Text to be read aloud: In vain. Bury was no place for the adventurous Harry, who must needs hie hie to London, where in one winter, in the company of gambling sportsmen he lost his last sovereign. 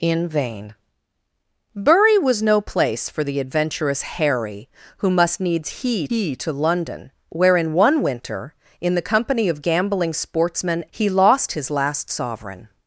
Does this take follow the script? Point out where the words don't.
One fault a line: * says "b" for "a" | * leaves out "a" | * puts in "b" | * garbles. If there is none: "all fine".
all fine